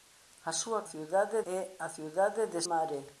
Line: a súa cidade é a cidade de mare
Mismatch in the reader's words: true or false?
false